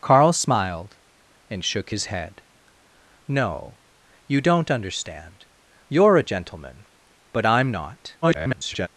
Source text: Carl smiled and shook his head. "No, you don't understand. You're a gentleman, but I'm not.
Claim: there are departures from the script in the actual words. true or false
true